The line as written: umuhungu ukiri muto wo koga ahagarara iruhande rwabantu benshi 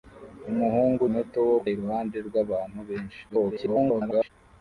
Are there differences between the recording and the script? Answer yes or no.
yes